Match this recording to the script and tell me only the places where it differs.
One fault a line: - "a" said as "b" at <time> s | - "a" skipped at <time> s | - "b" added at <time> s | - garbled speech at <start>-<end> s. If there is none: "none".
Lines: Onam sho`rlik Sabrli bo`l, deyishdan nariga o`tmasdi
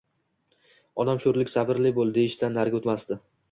none